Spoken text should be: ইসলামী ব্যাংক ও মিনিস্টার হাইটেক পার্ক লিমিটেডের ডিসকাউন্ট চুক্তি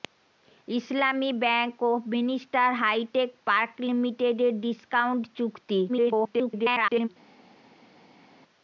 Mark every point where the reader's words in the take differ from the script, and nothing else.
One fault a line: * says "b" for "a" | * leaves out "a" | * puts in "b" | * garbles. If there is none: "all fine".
* garbles